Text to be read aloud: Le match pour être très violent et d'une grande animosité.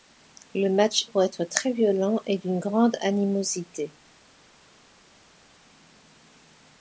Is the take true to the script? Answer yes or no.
yes